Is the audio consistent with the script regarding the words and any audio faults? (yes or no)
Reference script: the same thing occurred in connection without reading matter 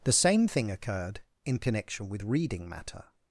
no